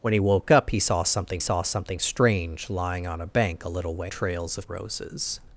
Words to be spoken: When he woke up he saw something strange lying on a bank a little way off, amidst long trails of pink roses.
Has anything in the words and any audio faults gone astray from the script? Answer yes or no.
yes